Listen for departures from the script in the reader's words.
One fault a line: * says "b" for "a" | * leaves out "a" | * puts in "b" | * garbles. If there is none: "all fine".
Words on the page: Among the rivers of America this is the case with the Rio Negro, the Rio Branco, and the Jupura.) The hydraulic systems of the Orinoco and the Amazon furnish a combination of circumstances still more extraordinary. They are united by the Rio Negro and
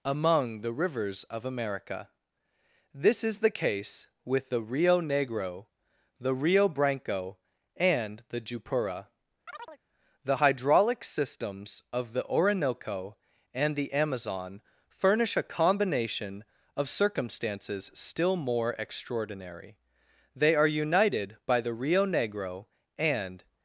all fine